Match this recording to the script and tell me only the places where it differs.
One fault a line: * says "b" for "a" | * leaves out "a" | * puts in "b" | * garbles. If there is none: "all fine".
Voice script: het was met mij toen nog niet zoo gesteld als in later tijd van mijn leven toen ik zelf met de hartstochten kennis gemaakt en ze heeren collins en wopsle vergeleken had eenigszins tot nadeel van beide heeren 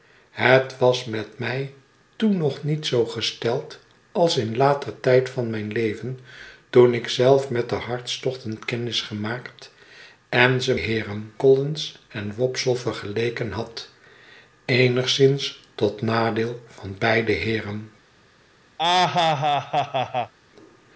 all fine